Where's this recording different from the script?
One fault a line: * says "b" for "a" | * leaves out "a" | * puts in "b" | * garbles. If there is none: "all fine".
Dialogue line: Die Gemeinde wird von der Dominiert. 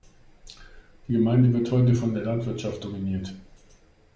* puts in "heute"
* puts in "Landwirtschaft"